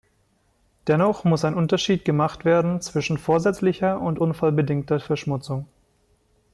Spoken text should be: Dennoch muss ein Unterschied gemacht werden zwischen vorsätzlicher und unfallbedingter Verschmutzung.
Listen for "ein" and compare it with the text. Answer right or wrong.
right